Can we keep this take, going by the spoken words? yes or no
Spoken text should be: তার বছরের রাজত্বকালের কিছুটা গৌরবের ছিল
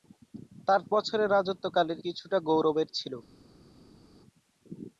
yes